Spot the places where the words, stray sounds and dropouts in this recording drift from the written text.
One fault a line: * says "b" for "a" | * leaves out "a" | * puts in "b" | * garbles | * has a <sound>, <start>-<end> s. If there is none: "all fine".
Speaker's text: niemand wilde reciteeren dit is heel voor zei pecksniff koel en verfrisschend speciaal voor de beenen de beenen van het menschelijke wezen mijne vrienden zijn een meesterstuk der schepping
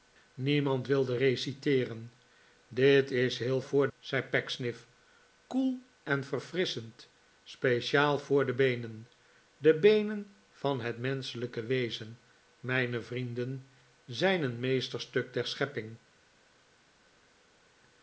all fine